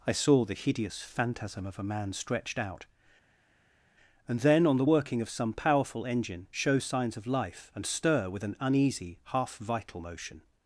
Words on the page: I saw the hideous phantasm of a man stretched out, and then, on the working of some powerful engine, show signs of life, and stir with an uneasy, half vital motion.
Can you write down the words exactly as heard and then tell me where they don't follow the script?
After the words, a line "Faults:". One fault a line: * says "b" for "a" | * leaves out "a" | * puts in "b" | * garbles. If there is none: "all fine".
I saw the hideous phantasm of a man stretched out, and then, on the working of some powerful engine, show signs of life, and stir with an uneasy, half vital motion.
Faults:
all fine